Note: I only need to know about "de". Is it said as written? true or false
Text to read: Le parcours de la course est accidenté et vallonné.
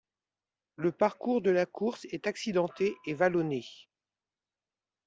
true